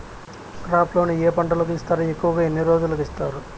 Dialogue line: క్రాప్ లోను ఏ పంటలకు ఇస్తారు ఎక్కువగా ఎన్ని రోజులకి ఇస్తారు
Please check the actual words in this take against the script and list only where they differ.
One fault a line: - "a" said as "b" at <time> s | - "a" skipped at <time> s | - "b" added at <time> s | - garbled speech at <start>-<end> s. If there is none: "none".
none